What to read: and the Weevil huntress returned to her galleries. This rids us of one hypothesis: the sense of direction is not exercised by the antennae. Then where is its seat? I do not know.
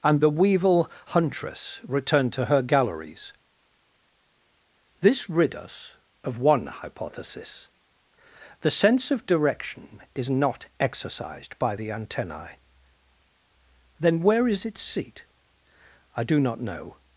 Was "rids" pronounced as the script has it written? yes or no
no